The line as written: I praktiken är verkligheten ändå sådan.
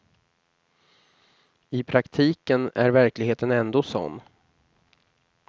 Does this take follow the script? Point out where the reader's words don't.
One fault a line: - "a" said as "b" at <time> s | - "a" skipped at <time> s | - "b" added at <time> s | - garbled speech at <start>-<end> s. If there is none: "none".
none